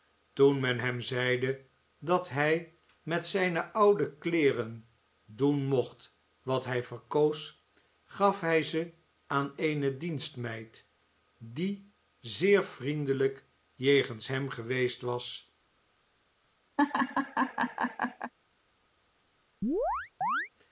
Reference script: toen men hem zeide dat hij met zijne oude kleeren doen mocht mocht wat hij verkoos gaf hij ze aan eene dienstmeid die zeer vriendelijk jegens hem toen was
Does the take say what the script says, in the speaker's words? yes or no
no